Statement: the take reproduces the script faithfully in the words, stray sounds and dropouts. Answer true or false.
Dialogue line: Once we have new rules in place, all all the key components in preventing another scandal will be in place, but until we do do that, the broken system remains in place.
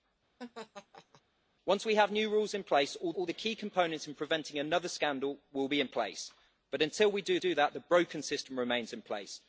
false